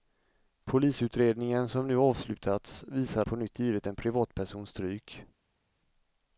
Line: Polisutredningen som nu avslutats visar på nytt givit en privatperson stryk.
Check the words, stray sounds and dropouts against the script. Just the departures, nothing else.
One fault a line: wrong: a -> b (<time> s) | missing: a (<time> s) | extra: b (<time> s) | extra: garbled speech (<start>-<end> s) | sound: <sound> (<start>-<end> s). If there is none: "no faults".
no faults